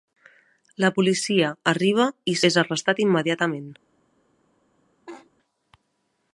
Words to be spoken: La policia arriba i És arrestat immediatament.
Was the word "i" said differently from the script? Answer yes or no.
no